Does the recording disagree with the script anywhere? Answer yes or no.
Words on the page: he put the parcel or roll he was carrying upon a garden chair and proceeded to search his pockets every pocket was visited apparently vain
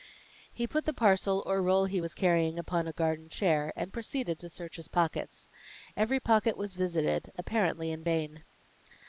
yes